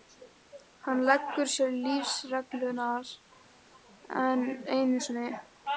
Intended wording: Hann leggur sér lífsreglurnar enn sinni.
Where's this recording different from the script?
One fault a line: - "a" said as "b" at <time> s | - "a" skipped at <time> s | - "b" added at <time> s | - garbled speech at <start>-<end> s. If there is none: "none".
- "einu" added at 4.8 s